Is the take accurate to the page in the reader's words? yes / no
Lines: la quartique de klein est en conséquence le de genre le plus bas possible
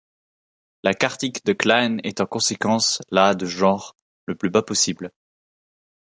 no